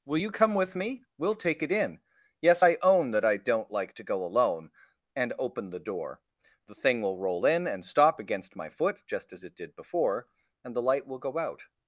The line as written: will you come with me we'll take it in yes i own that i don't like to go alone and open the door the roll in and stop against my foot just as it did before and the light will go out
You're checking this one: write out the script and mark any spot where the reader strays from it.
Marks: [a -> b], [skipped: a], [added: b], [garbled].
will you come with me we'll take it in yes i own that i don't like to go alone and open the door the [added: thing will] roll in and stop against my foot just as it did before and the light will go out